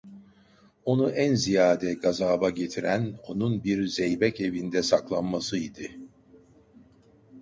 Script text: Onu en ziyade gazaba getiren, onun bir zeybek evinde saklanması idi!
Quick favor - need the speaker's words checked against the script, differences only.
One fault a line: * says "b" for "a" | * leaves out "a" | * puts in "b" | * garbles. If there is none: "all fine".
all fine